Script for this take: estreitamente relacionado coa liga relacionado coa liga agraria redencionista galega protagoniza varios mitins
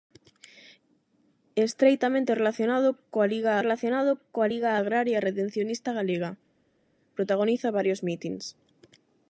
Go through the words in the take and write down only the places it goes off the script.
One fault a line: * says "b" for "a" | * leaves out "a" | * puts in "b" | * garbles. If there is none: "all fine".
all fine